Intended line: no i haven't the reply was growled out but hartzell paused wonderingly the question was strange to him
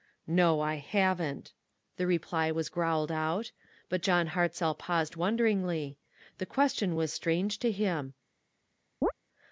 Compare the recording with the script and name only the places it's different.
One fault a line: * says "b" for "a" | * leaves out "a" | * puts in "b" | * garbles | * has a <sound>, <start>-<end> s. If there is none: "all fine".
* puts in "john"
* has a chirp, 9.0-9.1 s